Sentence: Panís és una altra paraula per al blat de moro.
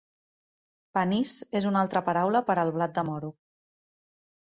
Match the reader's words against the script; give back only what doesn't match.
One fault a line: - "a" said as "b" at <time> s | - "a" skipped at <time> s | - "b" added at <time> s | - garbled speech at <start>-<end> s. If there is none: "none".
none